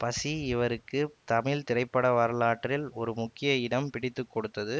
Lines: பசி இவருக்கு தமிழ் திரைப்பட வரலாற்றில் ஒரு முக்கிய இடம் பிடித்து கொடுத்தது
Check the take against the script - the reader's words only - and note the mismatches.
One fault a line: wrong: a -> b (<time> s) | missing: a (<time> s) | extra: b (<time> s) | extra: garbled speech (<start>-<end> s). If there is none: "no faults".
no faults